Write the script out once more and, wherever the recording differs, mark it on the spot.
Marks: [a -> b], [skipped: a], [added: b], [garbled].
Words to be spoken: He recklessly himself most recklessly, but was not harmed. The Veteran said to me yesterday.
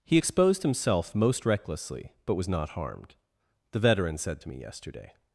He [recklessly -> exposed] himself most recklessly, but was not harmed. The Veteran said to me yesterday.